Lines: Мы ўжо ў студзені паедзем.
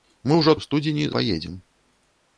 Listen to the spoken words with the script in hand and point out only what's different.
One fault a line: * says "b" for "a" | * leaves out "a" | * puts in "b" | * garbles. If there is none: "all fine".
all fine